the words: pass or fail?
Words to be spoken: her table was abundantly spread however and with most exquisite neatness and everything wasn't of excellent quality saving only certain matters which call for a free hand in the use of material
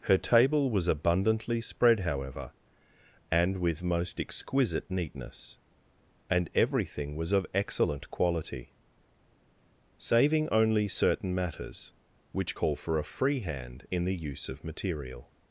fail